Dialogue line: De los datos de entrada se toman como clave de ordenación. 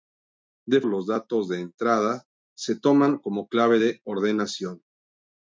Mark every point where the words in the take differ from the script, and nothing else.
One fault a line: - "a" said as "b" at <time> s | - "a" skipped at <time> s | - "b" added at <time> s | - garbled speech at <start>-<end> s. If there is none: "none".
none